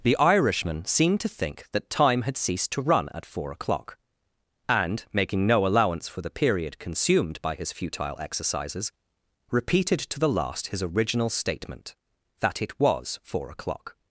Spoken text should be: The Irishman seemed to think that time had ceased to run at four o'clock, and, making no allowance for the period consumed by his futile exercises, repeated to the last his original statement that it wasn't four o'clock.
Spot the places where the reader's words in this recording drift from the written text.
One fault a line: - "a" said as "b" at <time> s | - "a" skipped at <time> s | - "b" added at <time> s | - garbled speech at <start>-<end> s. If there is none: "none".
- "wasn't" said as "was" at 12.8 s